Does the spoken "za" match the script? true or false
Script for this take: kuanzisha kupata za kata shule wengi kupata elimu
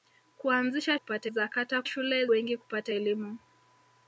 true